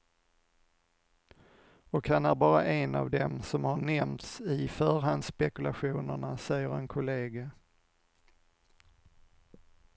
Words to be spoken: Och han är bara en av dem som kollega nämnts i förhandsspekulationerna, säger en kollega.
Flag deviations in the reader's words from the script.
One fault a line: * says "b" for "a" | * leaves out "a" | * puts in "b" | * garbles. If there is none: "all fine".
* says "har" for "kollega"